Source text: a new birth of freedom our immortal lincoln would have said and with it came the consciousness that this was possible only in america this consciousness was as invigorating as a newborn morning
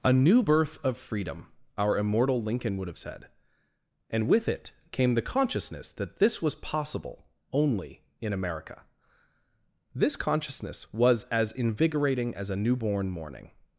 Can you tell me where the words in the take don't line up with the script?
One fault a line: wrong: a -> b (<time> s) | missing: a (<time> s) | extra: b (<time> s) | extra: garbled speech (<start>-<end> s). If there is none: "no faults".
no faults